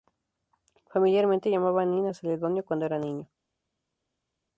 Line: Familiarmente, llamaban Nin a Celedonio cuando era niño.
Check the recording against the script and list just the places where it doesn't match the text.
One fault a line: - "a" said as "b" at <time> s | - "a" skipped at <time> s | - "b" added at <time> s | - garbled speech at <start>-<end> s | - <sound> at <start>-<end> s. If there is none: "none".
none